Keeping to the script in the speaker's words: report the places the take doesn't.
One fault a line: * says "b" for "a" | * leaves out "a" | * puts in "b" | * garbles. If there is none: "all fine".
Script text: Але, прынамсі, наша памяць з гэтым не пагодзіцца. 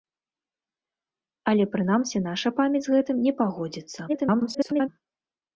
* garbles